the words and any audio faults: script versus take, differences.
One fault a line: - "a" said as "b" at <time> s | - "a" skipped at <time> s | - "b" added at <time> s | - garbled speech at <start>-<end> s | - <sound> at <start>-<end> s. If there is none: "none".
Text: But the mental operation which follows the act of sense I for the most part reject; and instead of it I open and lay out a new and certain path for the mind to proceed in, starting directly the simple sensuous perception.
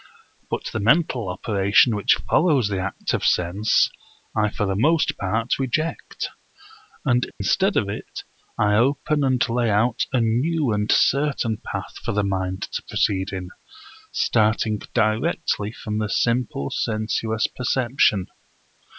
- dropout at 7.3-7.4 s
- "from" added at 15.7 s